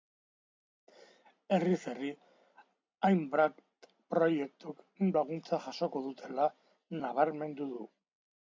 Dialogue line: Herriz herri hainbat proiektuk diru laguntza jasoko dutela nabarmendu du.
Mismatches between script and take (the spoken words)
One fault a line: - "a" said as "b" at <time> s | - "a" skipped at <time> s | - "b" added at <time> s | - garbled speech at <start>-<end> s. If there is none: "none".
- "diru" skipped at 4.8 s